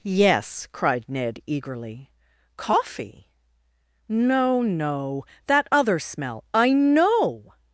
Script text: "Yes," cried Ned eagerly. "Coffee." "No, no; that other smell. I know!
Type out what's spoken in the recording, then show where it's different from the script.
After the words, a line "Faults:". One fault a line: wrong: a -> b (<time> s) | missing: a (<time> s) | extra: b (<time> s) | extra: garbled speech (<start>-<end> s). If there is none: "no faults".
"Yes," cried Ned eagerly. "Coffee." "No, no; that other smell. I know!
Faults:
no faults